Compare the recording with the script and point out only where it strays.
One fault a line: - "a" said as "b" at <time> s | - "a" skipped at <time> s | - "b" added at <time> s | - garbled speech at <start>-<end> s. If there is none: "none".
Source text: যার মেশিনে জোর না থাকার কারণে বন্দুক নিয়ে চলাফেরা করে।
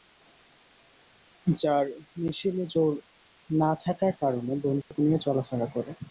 none